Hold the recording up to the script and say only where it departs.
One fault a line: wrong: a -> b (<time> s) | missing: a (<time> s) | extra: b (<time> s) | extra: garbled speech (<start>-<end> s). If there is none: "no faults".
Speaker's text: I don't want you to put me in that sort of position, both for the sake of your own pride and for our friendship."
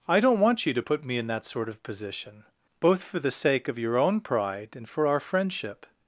no faults